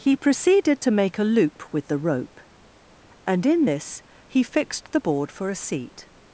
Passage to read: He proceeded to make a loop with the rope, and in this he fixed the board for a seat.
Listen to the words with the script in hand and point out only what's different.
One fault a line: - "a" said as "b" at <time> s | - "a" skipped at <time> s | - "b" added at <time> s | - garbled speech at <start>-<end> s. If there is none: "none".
none